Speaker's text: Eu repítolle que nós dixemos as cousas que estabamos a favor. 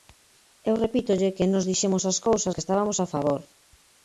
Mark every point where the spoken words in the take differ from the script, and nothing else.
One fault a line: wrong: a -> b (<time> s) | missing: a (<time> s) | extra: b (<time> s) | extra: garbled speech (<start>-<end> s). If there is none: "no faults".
no faults